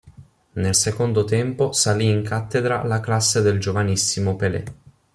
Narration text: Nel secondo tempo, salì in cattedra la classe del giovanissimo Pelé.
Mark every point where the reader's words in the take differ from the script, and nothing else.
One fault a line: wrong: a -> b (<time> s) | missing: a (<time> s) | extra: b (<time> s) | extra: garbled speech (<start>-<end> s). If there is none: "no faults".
no faults